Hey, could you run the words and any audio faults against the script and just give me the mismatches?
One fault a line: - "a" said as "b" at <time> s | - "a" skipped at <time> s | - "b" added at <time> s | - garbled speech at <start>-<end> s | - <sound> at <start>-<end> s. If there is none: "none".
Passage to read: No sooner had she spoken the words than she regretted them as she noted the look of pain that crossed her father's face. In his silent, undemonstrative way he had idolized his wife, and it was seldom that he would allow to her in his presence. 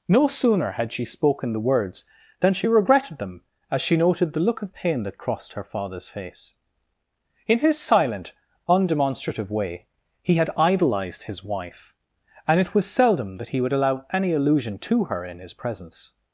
- "any allusion" added at 14.1 s